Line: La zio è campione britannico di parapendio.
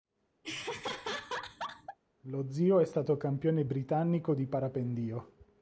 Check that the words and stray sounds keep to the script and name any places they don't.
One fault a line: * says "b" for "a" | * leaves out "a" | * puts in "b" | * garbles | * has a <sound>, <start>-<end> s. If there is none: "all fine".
* has a laugh, 0.4-2.0 s
* says "Lo" for "La"
* puts in "stato"